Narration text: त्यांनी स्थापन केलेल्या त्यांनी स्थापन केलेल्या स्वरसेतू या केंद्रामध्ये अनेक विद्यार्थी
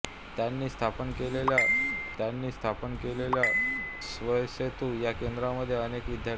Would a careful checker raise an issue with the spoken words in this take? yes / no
no